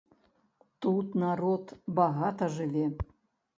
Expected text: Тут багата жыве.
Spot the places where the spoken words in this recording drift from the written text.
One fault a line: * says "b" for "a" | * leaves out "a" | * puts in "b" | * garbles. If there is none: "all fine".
* puts in "народ"